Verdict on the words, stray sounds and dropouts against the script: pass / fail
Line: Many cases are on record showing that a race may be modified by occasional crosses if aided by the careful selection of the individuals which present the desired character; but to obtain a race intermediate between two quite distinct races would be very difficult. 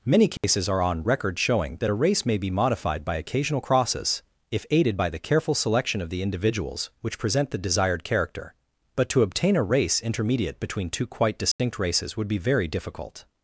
fail